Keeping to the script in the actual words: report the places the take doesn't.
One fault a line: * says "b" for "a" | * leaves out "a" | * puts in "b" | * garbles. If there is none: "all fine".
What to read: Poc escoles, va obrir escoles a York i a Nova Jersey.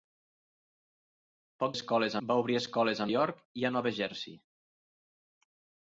all fine